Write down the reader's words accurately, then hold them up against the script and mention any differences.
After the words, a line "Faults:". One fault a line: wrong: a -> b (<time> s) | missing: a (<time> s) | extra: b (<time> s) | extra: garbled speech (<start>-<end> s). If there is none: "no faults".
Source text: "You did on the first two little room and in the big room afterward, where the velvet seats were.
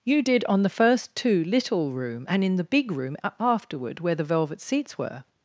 "You did on the first two little room and in the big room afterward, where the velvet seats were.
Faults:
no faults